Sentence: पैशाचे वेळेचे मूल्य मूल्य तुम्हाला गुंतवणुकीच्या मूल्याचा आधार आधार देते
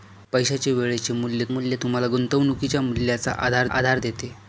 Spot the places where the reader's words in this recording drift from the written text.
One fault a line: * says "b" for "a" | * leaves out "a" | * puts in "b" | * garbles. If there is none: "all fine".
all fine